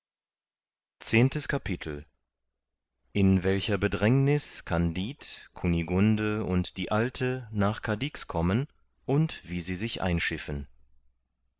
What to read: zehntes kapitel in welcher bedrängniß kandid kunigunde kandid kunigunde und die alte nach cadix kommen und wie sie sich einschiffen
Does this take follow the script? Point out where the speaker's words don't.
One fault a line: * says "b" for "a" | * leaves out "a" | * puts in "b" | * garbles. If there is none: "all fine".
* leaves out "kandid kunigunde"